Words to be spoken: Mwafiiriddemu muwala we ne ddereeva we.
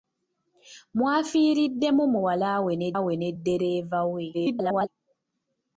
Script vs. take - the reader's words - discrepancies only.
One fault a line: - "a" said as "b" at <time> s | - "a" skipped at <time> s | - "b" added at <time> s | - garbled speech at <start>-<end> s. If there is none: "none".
- "we ne" added at 3.0 s
- garbled speech at 4.3-4.9 s